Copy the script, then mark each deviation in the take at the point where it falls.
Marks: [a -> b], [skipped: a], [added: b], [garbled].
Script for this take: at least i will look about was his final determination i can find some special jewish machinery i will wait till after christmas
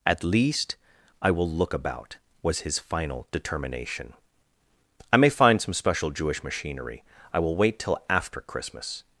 at least i will look about was his final determination i [can -> may] find some special jewish machinery i will wait till after christmas